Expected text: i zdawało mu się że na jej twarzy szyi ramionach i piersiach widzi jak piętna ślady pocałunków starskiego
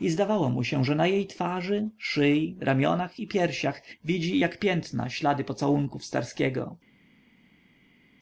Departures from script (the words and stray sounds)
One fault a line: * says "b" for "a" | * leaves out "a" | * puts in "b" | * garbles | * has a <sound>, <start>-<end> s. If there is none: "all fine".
all fine